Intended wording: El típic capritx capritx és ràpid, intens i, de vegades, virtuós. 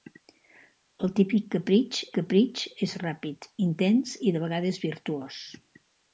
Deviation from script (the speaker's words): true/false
false